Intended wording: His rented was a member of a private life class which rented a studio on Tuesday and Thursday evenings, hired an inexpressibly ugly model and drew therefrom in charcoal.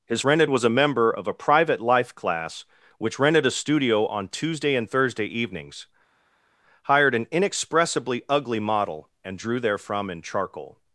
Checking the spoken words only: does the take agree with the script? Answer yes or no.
yes